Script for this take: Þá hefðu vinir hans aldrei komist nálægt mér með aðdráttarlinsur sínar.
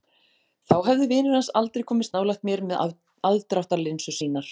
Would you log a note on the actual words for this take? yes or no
no